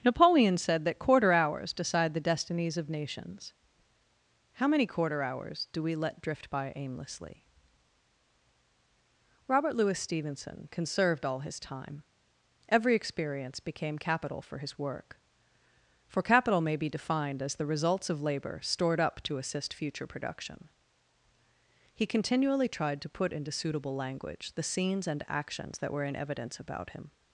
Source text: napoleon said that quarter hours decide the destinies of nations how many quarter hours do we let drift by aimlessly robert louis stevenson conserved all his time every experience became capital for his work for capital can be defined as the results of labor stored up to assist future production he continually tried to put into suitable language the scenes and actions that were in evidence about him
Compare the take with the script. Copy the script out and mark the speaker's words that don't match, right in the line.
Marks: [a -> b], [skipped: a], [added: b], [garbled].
napoleon said that quarter hours decide the destinies of nations how many quarter hours do we let drift by aimlessly robert louis stevenson conserved all his time every experience became capital for his work for capital [can -> may] be defined as the results of labor stored up to assist future production he continually tried to put into suitable language the scenes and actions that were in evidence about him